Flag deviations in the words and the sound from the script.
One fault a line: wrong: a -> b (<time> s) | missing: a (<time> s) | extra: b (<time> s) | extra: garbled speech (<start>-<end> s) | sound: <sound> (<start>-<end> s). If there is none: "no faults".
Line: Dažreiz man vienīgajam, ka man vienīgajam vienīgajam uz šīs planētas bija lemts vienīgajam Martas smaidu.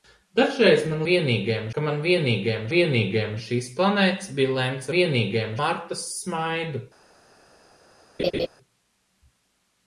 sound: laugh (8.2-8.5 s)